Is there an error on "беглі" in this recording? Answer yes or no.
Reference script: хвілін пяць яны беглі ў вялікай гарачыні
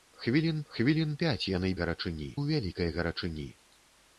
yes